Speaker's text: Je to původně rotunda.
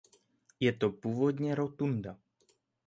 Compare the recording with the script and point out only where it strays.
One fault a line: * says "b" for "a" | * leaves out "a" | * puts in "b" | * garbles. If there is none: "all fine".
all fine